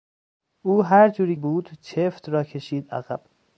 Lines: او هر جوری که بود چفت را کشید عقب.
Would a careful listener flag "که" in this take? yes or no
yes